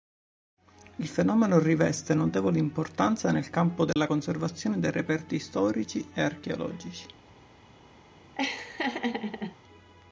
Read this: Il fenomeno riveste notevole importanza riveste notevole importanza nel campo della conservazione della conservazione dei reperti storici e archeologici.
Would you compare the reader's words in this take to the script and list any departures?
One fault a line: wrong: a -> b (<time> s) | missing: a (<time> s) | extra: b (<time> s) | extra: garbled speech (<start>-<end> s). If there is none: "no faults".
missing: riveste notevole importanza (3.3 s)
missing: della conservazione (4.8 s)